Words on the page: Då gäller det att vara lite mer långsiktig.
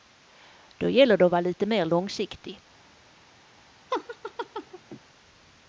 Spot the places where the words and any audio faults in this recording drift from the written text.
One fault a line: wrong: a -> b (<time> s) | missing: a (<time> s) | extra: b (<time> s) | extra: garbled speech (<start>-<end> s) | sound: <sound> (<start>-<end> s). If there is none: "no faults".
sound: laugh (3.9-5.0 s)